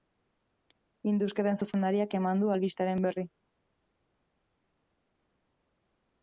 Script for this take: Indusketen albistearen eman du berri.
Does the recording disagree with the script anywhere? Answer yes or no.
yes